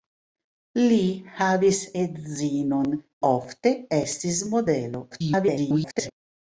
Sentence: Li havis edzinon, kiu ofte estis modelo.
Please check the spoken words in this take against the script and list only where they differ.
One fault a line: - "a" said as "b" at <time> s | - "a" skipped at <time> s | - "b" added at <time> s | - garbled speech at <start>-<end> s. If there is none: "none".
- "kiu" skipped at 2.9 s
- garbled speech at 5.1-6.1 s